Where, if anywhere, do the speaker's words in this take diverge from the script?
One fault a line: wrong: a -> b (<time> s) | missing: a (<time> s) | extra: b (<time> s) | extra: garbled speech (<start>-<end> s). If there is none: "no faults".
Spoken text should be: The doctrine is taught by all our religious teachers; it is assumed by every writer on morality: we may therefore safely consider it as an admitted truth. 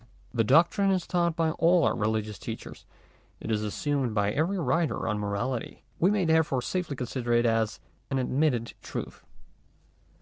no faults